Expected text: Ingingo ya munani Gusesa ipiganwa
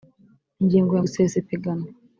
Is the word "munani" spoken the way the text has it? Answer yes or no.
no